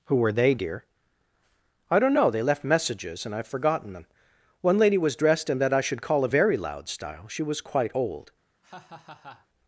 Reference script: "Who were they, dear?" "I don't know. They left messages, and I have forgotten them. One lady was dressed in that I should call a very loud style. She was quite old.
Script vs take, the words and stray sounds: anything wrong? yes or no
yes